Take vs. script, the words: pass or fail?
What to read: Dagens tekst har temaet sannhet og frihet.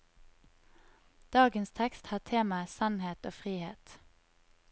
pass